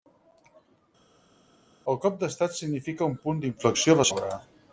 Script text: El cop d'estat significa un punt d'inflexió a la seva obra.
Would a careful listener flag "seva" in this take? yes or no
yes